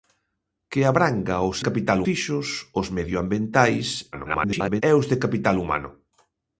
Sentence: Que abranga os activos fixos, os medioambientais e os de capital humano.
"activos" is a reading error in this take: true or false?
true